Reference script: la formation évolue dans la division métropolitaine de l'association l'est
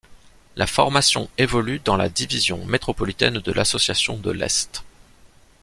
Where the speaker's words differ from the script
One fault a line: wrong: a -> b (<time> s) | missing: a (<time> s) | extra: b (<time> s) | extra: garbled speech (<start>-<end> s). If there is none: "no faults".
extra: de (4.2 s)